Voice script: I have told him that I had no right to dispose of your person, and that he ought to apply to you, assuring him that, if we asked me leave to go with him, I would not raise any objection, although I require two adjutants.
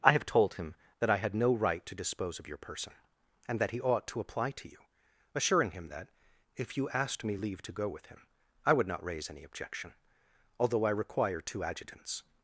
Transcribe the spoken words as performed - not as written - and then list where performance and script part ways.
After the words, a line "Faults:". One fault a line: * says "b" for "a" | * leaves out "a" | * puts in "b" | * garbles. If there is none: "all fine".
I have told him that I had no right to dispose of your person, and that he ought to apply to you, assuring him that, if you asked me leave to go with him, I would not raise any objection, although I require two adjutants.
Faults:
* says "you" for "we"